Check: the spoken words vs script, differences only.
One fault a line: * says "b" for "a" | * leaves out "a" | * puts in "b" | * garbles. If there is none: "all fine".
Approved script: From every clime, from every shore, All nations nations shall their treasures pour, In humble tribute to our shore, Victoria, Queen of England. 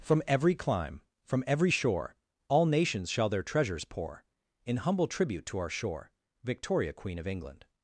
* leaves out "nations"